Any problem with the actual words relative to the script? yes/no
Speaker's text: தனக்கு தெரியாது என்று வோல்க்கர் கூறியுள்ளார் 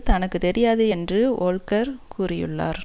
no